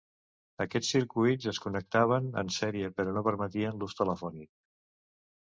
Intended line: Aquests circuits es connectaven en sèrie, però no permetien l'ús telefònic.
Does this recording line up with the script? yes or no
yes